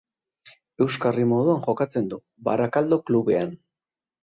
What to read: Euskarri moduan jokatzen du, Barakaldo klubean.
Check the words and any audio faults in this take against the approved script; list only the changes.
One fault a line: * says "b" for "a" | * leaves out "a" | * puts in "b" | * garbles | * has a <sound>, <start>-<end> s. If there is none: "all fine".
all fine